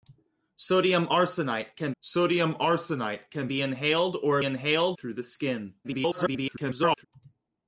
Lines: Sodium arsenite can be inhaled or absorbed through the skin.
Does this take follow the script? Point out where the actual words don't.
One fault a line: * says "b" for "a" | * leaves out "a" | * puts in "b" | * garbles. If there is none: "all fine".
* puts in "sodium arsenite can"
* says "inhaled" for "absorbed"
* garbles